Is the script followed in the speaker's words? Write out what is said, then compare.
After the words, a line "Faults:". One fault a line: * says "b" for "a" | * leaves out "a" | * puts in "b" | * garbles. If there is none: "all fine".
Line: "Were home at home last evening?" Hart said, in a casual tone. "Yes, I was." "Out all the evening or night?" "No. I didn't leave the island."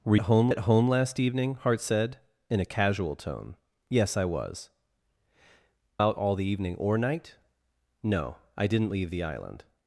"Were home at home last evening?" Hart said, in a casual tone. "Yes, I was." "Out all the evening or night?" "No. I didn't leave the island."
Faults:
all fine